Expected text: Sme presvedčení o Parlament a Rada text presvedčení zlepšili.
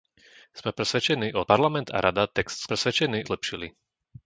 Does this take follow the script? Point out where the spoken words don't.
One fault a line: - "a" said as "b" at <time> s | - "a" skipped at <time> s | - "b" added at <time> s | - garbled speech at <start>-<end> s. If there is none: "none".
none